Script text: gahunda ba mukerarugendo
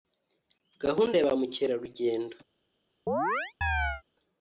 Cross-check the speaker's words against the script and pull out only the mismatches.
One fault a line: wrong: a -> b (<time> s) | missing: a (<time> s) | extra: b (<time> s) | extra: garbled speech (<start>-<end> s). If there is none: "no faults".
extra: ya (1.2 s)